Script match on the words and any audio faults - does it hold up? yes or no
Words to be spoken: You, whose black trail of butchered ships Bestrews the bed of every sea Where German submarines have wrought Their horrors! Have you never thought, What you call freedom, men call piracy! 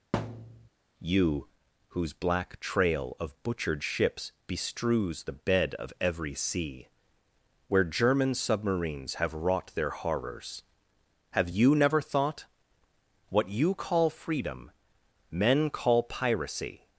no